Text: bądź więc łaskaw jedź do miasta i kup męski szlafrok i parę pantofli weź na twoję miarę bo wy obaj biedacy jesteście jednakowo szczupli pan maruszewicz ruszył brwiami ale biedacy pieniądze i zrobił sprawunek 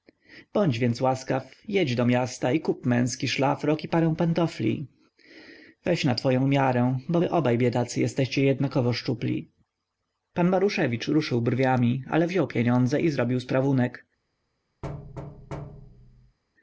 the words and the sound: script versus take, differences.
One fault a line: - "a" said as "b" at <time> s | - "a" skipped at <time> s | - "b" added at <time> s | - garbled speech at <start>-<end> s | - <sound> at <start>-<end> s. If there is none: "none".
- "biedacy" said as "wziął" at 12.3 s
- thud at 14.8-16.4 s